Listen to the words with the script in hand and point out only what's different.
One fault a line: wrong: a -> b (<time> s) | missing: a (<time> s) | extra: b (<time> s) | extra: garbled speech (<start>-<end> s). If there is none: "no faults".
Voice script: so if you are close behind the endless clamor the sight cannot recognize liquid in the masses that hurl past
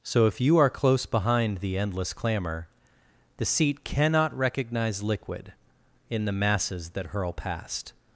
wrong: sight -> seat (3.5 s)